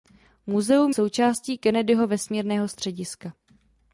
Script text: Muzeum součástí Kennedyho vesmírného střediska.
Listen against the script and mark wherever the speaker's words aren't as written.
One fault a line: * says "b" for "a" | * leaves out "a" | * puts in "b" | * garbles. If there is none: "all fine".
all fine